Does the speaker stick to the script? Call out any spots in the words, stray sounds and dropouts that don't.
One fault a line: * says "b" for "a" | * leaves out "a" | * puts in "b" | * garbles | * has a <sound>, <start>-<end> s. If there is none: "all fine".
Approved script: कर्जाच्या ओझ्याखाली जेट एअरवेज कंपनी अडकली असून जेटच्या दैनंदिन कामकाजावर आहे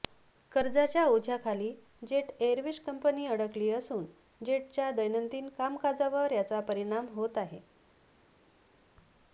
* puts in "याचा परिणाम होत"